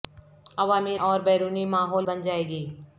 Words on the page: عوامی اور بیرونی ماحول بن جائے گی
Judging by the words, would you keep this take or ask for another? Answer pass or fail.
pass